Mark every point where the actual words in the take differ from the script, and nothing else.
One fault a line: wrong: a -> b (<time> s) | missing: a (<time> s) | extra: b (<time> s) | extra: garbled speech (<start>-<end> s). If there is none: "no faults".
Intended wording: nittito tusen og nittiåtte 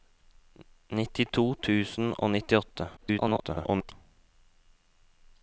extra: garbled speech (3.0-3.9 s)